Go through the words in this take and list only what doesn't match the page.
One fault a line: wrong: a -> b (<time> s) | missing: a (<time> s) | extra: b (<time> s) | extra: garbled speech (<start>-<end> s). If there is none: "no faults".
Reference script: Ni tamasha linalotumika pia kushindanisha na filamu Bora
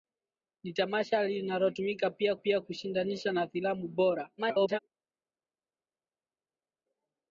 extra: pia (2.3 s)
extra: garbled speech (4.4-4.8 s)